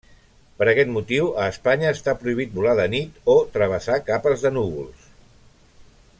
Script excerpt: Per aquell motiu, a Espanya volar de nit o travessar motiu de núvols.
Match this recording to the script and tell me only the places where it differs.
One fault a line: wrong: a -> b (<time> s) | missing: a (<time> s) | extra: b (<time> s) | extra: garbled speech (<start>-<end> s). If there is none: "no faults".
wrong: aquell -> aquest (0.7 s)
extra: està prohibit (2.0 s)
wrong: motiu -> capes (4.1 s)